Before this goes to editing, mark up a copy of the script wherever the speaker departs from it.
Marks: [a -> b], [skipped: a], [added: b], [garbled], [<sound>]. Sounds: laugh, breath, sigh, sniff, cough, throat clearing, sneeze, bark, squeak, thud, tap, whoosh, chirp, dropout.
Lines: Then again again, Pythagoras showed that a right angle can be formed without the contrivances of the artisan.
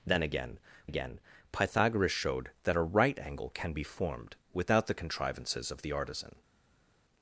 Then again again, Pythagoras showed that a right angle can be formed without the contrivances of the artisan.